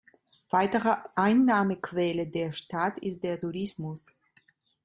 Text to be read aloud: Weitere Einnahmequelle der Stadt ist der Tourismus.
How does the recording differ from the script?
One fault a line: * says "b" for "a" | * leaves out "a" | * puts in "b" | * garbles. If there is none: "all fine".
all fine